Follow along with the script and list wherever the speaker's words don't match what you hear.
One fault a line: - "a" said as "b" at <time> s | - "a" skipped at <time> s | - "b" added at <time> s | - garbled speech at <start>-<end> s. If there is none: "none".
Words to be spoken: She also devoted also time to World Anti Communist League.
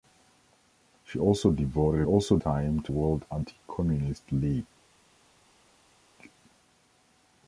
none